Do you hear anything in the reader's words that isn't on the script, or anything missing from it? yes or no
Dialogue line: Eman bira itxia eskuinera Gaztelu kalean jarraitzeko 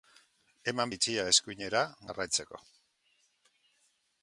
yes